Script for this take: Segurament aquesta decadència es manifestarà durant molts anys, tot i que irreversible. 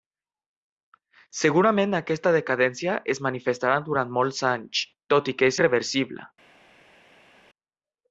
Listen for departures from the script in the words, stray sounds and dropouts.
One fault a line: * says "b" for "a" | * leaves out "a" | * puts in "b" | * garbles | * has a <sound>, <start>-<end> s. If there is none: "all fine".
all fine